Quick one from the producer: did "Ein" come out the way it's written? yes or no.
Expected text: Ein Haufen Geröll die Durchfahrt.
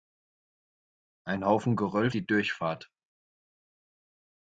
yes